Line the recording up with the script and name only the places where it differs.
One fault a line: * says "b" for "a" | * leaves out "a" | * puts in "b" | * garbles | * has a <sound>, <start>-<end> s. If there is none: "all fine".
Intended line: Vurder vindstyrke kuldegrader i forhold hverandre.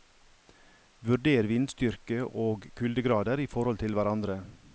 * puts in "og"
* puts in "til"